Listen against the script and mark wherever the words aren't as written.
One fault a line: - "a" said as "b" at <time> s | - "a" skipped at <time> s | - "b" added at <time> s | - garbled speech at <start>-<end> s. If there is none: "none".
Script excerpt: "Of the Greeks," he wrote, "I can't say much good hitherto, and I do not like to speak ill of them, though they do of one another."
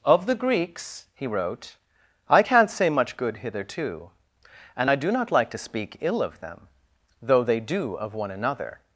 none